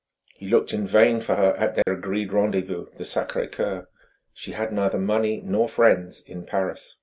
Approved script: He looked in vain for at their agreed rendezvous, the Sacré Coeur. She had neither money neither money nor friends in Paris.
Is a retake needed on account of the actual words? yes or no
yes